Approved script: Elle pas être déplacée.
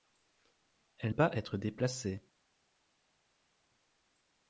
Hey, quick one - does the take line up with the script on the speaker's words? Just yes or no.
yes